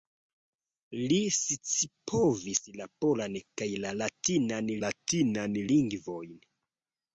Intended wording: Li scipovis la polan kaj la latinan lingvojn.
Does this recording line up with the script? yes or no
no